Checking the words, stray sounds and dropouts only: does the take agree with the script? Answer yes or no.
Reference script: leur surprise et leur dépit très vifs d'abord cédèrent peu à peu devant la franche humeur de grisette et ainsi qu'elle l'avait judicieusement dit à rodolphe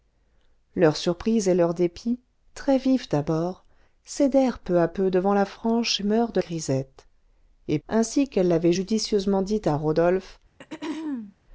no